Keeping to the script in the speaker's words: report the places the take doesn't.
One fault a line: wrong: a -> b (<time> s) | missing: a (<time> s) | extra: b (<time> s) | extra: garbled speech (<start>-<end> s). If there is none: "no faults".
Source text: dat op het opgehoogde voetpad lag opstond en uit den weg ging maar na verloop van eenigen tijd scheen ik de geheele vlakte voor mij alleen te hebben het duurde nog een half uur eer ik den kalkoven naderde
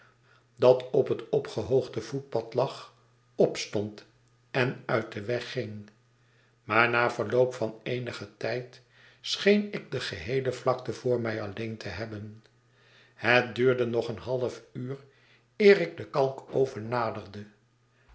no faults